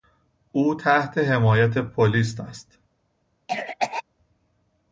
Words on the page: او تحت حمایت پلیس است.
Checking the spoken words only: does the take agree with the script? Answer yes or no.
yes